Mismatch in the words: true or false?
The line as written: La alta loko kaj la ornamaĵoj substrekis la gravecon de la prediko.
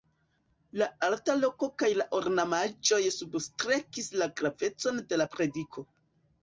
false